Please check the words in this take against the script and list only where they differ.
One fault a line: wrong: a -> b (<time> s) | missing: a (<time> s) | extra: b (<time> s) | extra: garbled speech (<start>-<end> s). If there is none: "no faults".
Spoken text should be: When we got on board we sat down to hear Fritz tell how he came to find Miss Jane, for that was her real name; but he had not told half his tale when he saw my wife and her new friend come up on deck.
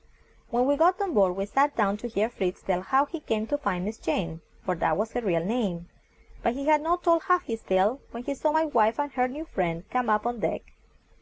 no faults